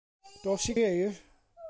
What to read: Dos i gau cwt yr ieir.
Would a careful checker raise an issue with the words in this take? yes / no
yes